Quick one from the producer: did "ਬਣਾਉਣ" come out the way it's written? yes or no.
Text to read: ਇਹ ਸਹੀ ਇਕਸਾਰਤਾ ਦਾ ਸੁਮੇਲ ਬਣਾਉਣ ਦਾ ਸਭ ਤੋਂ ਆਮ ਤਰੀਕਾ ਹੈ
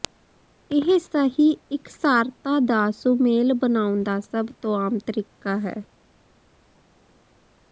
yes